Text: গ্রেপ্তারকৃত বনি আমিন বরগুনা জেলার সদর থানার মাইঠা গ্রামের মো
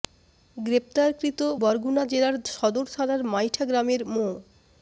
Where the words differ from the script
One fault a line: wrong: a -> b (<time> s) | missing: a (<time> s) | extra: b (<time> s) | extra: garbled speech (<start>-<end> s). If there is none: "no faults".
missing: বনি আমিন (1.4 s)